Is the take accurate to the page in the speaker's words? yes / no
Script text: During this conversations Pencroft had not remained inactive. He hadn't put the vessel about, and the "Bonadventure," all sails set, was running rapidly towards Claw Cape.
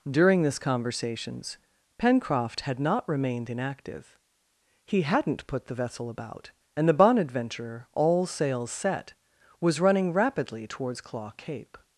yes